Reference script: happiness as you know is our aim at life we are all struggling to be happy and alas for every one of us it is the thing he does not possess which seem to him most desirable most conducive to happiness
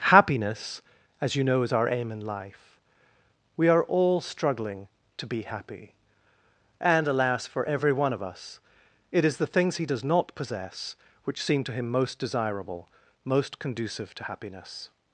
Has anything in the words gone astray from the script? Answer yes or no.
yes